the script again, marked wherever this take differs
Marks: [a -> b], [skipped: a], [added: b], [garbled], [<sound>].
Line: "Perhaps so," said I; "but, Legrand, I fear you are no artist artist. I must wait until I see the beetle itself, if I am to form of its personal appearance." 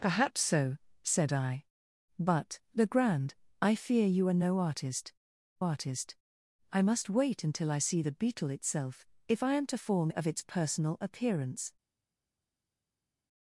"Perhaps so," said I; "but, Legrand, I fear you are no artist artist. I must wait until I see the beetle itself, if I am to form of its personal appearance."